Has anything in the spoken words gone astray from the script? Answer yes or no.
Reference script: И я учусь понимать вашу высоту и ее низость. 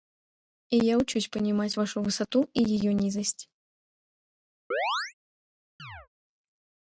no